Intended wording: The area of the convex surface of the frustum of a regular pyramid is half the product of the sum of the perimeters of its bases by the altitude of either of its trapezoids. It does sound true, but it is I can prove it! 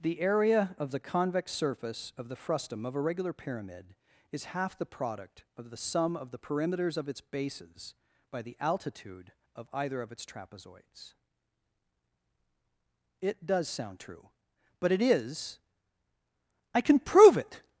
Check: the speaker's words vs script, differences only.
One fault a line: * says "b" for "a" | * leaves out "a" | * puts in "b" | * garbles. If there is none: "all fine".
all fine